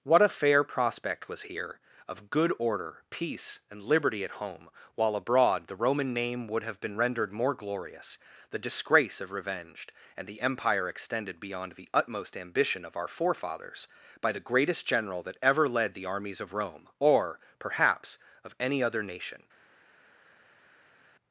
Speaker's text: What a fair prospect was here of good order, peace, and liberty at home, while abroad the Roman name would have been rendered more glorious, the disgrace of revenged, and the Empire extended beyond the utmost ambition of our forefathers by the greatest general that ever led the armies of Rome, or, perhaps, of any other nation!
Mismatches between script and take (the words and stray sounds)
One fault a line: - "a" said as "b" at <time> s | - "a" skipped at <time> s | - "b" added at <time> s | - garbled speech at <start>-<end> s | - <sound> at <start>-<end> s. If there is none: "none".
none